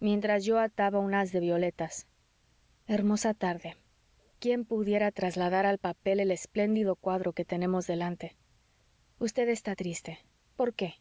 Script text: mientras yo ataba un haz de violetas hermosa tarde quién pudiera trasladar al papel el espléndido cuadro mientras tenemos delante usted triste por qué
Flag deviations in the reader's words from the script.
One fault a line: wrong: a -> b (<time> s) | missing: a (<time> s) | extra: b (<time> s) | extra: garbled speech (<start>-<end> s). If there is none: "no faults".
wrong: mientras -> que (7.3 s)
extra: está (9.5 s)